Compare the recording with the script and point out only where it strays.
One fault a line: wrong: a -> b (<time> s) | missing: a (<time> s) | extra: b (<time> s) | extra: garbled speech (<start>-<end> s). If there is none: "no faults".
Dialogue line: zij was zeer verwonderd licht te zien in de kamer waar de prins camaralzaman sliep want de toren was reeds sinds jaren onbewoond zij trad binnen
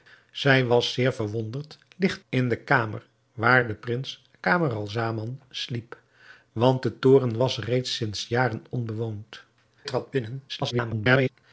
missing: te zien (2.2 s)
missing: zij (9.4 s)
extra: garbled speech (10.5-11.3 s)